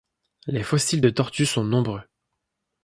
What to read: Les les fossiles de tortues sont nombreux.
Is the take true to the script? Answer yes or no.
no